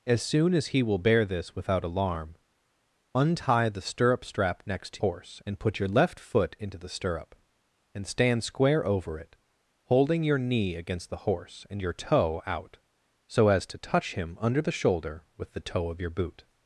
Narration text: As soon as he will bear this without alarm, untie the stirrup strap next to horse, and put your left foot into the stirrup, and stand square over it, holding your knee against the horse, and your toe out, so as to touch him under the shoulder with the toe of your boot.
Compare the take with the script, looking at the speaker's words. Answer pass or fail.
pass